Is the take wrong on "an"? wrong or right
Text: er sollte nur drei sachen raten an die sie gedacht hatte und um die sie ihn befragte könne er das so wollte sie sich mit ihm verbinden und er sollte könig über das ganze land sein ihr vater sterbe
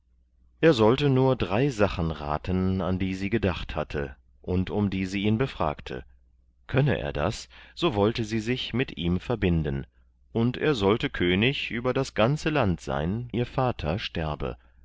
right